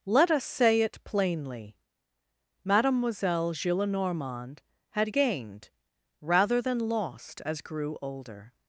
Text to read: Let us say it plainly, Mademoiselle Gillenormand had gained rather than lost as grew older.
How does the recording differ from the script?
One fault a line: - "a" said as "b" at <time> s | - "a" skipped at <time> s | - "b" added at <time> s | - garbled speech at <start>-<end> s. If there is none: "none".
none